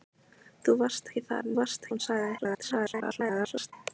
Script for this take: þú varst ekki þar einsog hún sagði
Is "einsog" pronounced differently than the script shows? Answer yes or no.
yes